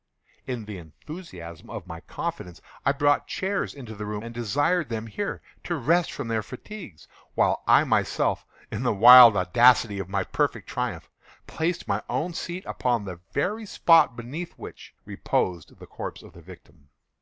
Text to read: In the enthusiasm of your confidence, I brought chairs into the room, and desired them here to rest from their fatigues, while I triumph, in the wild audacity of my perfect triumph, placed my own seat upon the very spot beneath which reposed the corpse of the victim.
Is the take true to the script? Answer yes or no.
no